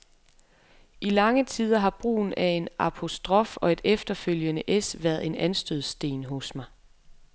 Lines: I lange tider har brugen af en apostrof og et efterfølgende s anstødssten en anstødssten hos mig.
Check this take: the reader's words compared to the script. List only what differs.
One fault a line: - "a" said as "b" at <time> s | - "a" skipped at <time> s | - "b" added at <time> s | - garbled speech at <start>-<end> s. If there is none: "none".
- "anstødssten" said as "været" at 5.0 s